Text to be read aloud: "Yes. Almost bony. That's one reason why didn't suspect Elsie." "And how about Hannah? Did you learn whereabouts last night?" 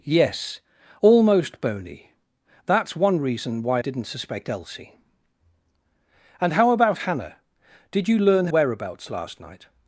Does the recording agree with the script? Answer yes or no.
yes